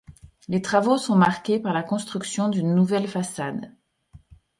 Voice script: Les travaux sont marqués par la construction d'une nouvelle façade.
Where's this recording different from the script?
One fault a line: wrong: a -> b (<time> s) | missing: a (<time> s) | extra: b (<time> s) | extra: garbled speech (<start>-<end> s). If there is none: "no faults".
no faults